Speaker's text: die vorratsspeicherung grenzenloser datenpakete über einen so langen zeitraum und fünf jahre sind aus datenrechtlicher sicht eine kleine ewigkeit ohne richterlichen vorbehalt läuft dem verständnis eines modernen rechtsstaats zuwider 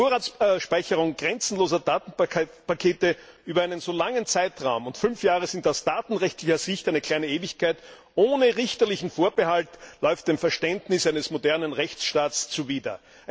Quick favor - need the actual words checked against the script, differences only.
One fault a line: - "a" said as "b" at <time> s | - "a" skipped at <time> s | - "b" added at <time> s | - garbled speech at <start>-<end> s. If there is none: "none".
none